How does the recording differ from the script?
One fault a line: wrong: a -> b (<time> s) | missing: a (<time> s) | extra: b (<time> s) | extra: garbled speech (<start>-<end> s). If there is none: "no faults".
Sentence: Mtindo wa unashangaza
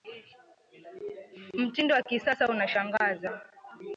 extra: kisasa (2.0 s)